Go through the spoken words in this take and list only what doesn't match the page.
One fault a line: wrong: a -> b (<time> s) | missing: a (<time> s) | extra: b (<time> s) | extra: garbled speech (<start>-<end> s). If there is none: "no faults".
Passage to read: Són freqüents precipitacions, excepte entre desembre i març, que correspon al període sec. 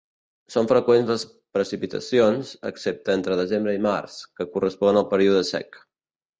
extra: les (1.1 s)